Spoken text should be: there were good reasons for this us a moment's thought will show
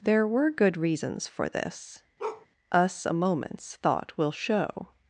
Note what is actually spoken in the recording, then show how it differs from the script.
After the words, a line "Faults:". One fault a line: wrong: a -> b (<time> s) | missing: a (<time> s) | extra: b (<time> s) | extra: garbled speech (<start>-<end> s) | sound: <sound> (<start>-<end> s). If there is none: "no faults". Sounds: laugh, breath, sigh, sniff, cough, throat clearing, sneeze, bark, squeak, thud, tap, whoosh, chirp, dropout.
there were good reasons for this us a moment's thought will show
Faults:
sound: bark (2.2-2.5 s)